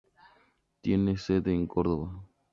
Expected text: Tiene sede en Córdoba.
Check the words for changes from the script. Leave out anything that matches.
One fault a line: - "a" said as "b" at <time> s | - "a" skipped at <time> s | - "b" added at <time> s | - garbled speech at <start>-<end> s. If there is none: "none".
none